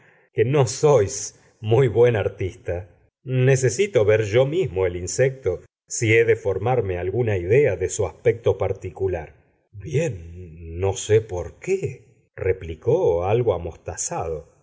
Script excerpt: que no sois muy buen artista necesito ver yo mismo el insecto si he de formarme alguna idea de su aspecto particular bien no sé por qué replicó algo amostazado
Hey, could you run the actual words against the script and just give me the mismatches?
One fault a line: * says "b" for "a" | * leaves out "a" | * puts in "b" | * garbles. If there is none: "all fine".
all fine